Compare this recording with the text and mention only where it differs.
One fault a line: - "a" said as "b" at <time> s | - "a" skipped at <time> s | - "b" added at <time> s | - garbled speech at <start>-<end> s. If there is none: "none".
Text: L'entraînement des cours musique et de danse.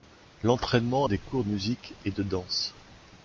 none